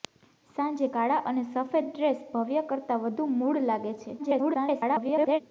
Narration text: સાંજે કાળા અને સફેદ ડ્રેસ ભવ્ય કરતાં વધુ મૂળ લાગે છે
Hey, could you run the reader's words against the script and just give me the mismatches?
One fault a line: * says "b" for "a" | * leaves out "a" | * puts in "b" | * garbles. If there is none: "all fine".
* garbles